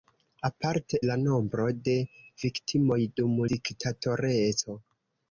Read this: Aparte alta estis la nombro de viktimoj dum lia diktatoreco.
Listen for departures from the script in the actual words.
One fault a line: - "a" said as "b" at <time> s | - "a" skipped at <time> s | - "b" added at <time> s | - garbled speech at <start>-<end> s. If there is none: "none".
- "alta estis" skipped at 1.0 s
- "lia" skipped at 3.4 s